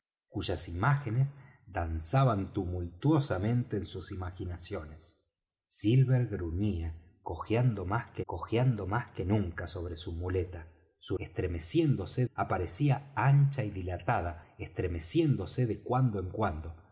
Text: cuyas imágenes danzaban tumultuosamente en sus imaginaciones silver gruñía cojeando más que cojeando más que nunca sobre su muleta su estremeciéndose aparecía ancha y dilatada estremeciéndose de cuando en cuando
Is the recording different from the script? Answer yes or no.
no